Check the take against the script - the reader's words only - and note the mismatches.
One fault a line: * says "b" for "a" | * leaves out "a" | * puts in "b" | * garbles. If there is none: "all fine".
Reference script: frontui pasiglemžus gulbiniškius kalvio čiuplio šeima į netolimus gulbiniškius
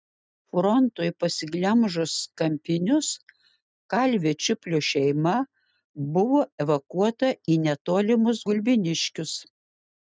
* says "kampinius" for "gulbiniškius"
* puts in "buvo evakuota"